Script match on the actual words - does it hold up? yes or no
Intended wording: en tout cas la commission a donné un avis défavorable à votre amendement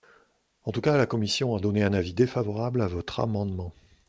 yes